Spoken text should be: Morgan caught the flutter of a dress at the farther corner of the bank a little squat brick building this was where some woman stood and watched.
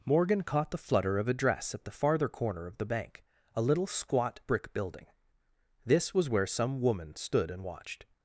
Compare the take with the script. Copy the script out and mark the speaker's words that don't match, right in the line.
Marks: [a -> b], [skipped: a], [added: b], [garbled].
Morgan caught the flutter of a dress at the farther corner of the bank a little squat brick building this was where some woman stood and watched.